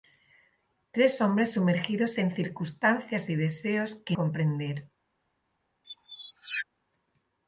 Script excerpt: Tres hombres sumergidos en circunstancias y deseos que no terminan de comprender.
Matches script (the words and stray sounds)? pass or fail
fail